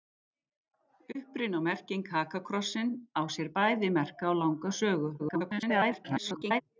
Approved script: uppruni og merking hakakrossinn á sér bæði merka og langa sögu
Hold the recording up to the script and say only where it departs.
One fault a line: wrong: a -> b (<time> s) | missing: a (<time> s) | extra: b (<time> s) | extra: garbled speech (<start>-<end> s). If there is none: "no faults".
extra: garbled speech (5.2-6.6 s)